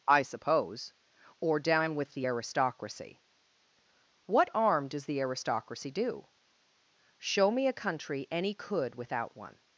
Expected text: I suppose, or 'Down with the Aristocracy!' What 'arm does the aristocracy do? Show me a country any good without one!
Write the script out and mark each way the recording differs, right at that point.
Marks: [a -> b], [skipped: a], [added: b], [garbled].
I suppose, or 'Down with the Aristocracy!' What 'arm does the aristocracy do? Show me a country any [good -> could] without one!